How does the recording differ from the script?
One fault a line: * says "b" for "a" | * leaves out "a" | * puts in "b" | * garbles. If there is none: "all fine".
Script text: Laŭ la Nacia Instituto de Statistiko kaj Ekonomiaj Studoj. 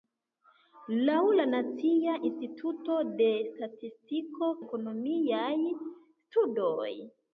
* leaves out "kaj"